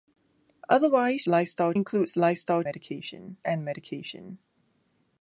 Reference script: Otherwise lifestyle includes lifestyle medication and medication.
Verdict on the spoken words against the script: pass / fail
pass